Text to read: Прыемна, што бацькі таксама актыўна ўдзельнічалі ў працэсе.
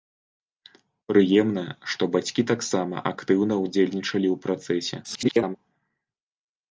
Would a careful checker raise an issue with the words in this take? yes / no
yes